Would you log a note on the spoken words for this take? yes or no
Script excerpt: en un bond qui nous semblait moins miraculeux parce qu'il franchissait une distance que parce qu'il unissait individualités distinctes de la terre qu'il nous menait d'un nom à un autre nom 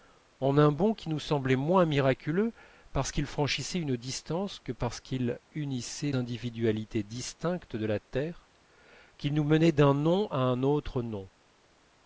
no